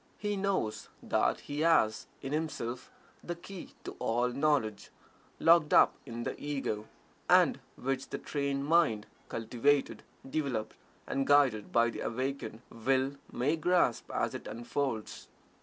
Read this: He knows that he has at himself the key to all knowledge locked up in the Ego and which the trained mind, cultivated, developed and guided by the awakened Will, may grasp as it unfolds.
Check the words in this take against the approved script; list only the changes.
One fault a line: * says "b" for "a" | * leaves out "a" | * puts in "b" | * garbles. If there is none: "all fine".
* says "in" for "at"